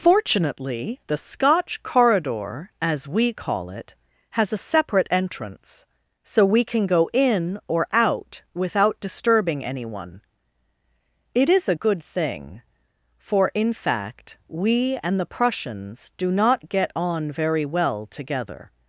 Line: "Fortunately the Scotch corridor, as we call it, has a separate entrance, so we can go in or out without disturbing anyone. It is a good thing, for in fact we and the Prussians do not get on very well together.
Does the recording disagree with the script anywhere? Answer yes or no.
no